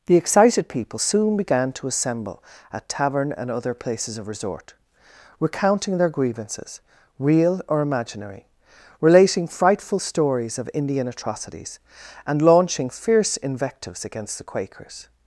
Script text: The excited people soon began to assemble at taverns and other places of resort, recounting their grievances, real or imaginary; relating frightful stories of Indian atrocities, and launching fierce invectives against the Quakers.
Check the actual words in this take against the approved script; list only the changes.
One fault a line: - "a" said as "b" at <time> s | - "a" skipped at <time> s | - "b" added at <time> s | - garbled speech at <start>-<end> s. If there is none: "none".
- "taverns" said as "tavern" at 2.9 s